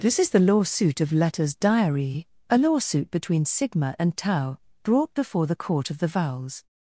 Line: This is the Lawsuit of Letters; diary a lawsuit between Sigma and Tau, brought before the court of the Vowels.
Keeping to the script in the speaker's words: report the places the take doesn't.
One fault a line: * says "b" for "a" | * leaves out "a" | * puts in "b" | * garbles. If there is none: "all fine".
all fine